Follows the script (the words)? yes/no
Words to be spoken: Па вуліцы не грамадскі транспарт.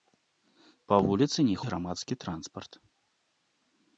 yes